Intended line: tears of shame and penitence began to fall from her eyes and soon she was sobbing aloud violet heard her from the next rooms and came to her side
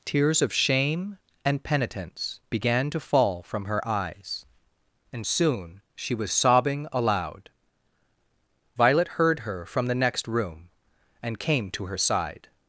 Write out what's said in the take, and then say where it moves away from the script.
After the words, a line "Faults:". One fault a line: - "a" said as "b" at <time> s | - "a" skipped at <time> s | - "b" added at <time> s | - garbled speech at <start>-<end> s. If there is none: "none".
tears of shame and penitence began to fall from her eyes and soon she was sobbing aloud violet heard her from the next room and came to her side
Faults:
- "rooms" said as "room" at 10.3 s